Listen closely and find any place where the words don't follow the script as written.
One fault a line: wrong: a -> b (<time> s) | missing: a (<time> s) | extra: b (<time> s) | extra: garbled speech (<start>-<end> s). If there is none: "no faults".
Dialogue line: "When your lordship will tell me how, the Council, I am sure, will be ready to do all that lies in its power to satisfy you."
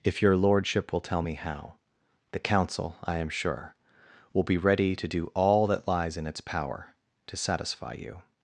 wrong: When -> If (0.0 s)